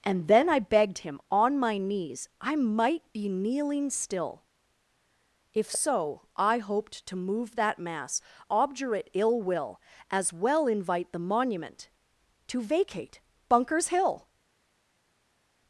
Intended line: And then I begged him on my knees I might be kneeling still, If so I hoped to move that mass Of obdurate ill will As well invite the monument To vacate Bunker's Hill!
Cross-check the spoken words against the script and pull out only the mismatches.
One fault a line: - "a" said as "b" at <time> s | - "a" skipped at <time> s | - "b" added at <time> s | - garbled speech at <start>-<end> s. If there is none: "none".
- "Of" skipped at 8.2 s